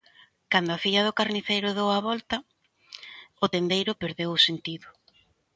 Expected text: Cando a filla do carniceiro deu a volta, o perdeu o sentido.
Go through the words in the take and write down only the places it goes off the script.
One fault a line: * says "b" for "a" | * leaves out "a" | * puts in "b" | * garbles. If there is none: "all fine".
* puts in "tendeiro"